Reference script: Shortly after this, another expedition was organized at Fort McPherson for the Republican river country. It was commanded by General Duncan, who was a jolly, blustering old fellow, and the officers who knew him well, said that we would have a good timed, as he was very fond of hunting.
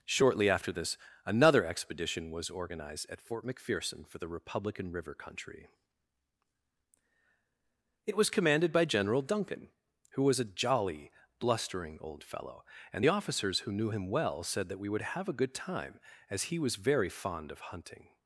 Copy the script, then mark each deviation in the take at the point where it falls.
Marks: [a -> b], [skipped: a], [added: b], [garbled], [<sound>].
Shortly after this, another expedition was organized at Fort McPherson for the Republican river country. It was commanded by General Duncan, who was a jolly, blustering old fellow, and the officers who knew him well, said that we would have a good [timed, -> time] as he was very fond of hunting.